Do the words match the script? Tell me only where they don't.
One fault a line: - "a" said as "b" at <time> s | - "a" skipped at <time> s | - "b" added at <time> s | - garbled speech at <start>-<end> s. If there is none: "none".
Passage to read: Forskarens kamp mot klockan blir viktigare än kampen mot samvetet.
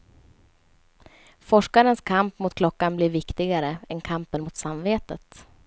none